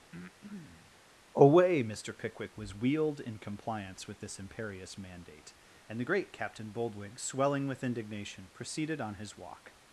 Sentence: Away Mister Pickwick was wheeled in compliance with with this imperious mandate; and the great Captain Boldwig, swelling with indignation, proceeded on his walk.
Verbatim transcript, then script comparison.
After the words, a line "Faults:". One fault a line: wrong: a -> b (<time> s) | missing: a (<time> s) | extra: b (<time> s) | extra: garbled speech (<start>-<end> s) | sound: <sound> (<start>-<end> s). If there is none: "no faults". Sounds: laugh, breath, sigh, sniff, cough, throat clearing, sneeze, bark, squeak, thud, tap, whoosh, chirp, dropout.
Away Mister Pickwick was wheeled in compliance with this imperious mandate; and the great Captain Boldwig, swelling with indignation, proceeded on his walk.
Faults:
sound: breath (0.1-1.0 s)
missing: with (4.2 s)